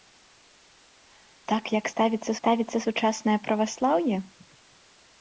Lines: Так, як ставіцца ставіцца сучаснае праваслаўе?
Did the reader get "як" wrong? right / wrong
right